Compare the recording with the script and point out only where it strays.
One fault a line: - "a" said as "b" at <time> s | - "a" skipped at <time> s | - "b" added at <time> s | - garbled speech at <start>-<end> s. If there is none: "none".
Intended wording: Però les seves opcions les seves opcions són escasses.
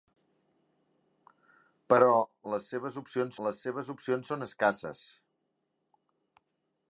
none